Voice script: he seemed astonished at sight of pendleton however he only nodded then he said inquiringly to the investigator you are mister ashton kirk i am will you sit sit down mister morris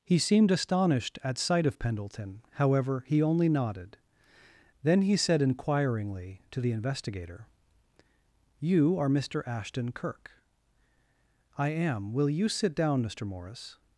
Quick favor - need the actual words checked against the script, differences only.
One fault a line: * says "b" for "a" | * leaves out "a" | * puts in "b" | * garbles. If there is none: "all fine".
* leaves out "sit"